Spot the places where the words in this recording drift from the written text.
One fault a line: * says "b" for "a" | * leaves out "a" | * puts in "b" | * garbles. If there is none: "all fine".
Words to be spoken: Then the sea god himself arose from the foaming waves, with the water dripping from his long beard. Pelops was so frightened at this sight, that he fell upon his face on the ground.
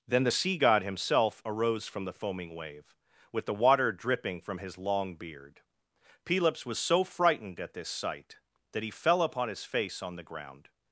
* says "wave" for "waves"